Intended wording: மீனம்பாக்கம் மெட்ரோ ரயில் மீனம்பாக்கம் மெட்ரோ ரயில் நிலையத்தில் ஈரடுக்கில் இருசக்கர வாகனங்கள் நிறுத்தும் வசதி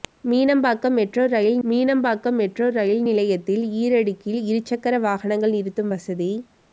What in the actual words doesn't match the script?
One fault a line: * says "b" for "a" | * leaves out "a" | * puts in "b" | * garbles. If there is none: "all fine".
all fine